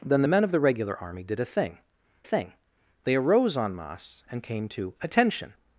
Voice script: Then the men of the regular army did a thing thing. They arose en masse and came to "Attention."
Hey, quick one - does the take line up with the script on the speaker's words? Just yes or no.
yes